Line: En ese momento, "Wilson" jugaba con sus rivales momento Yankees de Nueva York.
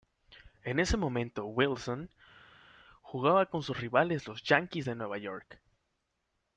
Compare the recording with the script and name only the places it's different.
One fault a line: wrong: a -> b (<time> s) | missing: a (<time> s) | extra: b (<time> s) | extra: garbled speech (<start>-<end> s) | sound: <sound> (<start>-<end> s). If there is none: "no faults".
wrong: momento -> los (4.3 s)